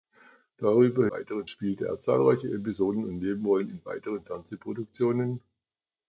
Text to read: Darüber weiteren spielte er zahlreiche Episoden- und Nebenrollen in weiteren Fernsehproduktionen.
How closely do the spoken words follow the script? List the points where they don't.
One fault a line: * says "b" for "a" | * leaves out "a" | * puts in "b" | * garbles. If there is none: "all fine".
all fine